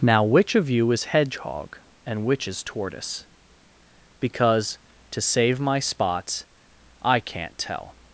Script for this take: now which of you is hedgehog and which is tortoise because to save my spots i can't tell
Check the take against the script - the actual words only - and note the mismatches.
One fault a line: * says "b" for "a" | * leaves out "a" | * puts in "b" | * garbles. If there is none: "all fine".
all fine